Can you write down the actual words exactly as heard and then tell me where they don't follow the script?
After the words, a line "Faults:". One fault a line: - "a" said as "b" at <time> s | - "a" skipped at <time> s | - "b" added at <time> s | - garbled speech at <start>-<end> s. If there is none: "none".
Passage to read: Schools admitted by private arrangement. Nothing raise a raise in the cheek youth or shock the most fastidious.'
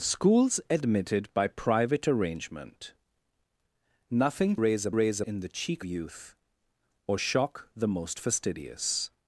Schools admitted by private arrangement. Nothing raise a raise in the cheek youth or shock the most fastidious.'
Faults:
none